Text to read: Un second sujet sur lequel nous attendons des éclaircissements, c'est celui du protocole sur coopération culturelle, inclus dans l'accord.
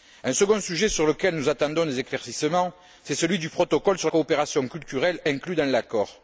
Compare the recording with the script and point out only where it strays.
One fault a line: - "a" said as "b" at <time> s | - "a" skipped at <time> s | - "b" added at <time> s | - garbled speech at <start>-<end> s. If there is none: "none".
none